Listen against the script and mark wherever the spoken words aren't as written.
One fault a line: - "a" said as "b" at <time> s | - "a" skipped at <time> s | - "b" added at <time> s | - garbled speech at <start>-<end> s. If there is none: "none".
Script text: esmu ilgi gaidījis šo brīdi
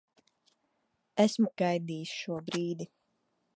- "ilgi" skipped at 1.5 s